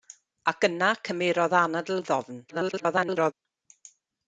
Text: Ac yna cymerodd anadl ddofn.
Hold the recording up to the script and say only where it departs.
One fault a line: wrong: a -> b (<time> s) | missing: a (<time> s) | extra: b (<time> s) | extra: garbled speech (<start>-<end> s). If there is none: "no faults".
extra: garbled speech (2.5-3.3 s)